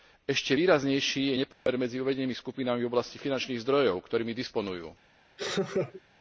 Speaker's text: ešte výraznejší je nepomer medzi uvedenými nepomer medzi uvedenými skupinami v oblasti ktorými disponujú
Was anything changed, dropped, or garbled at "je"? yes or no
no